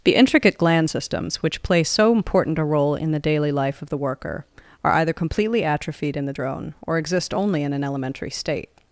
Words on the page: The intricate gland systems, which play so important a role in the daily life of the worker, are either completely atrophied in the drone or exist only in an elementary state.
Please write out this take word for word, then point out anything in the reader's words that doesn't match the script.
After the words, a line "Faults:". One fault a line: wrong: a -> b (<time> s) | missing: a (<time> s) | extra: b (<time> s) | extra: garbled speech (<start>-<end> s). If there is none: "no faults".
The intricate gland systems, which play so important a role in the daily life of the worker, are either completely atrophied in the drone or exist only in an elementary state.
Faults:
no faults